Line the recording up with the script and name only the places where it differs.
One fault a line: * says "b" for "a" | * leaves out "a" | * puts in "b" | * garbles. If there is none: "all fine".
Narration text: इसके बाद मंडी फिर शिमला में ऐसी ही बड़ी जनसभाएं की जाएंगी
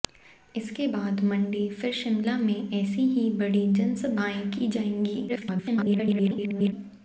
* garbles